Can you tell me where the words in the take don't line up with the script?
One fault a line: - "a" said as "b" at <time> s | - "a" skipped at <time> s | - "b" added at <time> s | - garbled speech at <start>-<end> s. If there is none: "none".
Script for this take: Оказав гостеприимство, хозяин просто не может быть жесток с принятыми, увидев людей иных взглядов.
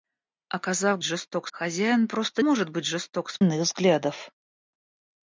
- "гостеприимство" said as "жесток" at 1.0 s
- "не" skipped at 2.4 s
- "принятыми увидев людей" skipped at 3.4 s